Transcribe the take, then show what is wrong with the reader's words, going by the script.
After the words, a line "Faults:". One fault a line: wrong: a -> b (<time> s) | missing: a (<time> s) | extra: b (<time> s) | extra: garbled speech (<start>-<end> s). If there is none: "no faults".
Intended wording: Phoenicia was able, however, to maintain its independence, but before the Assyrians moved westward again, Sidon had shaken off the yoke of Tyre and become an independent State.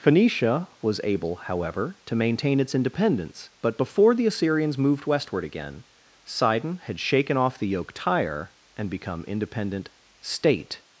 Phoenicia was able, however, to maintain its independence, but before the Assyrians moved westward again, Sidon had shaken off the yoke Tyre and become independent State.
Faults:
missing: of (7.9 s)
missing: an (9.2 s)